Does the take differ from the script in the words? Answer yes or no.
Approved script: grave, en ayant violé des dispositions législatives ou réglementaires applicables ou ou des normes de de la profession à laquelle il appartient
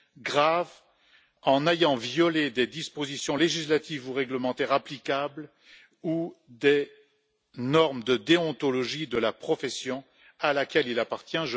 yes